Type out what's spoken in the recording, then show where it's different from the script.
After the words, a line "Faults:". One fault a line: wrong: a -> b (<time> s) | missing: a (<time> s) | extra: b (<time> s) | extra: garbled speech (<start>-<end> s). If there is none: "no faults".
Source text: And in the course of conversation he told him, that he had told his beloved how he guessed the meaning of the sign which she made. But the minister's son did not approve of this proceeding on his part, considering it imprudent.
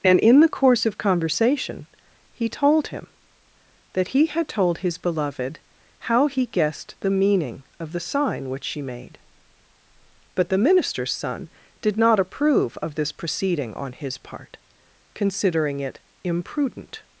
And in the course of conversation he told him, that he had told his beloved how he guessed the meaning of the sign which she made. But the minister's son did not approve of this proceeding on his part, considering it imprudent.
Faults:
no faults